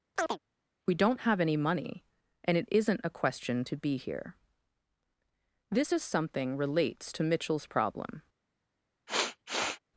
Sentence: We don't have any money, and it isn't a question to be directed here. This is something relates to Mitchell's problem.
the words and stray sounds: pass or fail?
fail